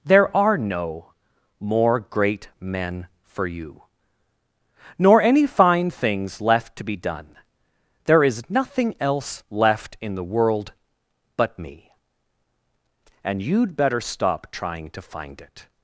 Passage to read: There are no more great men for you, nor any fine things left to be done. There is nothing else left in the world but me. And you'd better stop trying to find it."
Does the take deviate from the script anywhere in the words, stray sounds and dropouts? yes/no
no